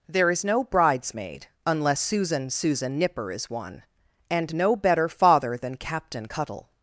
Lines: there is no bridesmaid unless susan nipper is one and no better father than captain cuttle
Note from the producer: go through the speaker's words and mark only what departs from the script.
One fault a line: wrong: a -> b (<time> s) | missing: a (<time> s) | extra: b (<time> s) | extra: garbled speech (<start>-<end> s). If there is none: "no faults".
extra: susan (2.5 s)